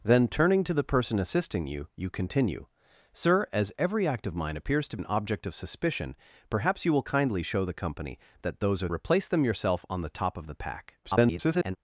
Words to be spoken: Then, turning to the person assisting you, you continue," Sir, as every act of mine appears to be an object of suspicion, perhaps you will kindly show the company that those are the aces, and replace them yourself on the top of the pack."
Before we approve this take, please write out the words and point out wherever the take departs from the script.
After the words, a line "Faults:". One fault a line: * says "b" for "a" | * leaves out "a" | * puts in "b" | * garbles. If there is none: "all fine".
Then, turning to the person assisting you, you continue," Sir, as every act of mine appears to an object of suspicion, perhaps you will kindly show the company that those are replace them yourself on the top of the pack." [garbled]
Faults:
* leaves out "be"
* leaves out "the aces and"
* garbles